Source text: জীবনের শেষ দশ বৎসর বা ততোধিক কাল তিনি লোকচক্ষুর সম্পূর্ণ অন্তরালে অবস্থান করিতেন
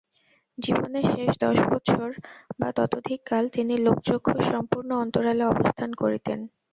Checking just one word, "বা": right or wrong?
right